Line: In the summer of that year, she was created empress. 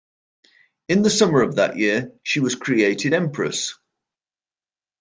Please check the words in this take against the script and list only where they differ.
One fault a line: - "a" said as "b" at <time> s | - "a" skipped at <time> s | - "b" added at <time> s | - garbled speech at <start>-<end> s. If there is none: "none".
none